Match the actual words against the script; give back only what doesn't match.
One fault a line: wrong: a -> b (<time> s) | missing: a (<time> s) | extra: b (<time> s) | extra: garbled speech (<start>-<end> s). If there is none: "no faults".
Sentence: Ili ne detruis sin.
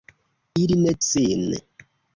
missing: detruis (0.9 s)